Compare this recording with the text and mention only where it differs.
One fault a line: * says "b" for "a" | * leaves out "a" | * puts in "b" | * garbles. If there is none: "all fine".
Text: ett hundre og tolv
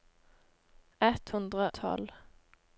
* leaves out "og"